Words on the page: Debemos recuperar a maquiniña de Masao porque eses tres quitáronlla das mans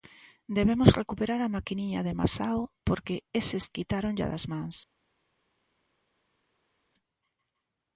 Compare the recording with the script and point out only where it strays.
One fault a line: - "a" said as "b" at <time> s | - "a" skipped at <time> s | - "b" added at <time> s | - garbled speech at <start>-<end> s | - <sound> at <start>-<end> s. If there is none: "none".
- "tres" skipped at 3.6 s